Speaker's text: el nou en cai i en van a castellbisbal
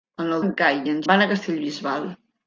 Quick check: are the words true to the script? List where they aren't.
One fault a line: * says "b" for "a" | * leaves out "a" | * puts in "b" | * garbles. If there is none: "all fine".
all fine